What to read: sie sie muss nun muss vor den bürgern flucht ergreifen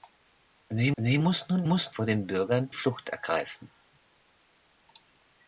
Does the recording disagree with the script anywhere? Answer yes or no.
no